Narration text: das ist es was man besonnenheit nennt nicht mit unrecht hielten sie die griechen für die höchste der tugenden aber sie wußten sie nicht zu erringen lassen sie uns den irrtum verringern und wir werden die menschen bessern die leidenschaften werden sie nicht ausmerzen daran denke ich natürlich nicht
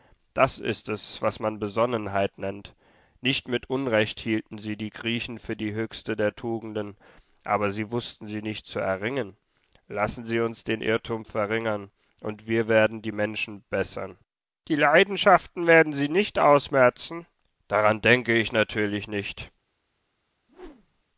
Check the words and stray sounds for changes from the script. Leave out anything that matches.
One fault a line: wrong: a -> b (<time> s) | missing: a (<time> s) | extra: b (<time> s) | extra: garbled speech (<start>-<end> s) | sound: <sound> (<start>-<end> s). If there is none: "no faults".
sound: whoosh (20.5-21.0 s)